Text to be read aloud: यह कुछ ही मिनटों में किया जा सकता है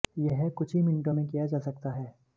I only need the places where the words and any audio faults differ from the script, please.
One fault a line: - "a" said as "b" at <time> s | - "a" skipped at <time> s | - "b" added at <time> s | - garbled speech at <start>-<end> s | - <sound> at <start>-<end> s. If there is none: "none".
none